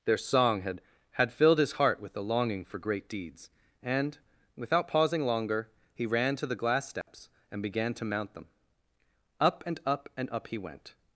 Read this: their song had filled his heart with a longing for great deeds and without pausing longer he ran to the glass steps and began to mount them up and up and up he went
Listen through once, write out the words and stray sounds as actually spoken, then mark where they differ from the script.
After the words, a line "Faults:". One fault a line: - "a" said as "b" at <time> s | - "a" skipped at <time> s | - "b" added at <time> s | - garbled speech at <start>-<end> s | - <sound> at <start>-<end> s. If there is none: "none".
their song had had filled his heart with a longing for great deeds and without pausing longer he ran to the glass steps and began to mount them up and up and up he went
Faults:
- "had" added at 1.1 s
- dropout at 7.0-7.1 s